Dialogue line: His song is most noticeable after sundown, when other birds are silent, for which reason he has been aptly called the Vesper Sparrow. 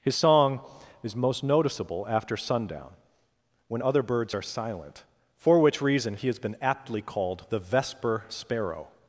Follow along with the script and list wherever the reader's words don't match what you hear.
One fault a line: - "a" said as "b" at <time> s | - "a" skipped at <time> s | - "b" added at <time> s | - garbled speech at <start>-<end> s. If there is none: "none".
none